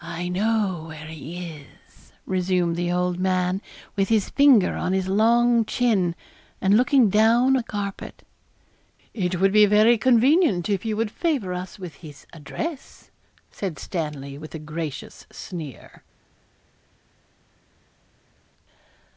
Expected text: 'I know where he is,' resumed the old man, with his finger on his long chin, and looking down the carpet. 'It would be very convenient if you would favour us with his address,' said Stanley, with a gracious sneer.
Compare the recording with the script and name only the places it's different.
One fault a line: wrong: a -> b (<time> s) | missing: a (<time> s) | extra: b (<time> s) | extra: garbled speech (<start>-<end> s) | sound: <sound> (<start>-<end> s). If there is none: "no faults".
no faults